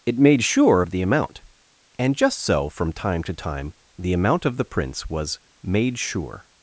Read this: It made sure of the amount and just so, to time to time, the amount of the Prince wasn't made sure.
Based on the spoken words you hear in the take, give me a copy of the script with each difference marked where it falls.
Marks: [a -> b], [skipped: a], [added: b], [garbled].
It made sure of the amount and just so, [to -> from] time to time, the amount of the Prince [wasn't -> was] made sure.